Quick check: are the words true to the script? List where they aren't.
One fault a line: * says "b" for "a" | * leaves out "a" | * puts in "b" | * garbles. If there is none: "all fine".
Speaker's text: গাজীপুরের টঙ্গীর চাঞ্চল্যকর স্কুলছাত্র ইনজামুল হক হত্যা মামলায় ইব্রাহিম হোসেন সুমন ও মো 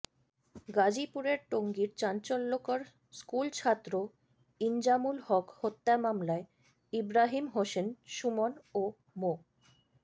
all fine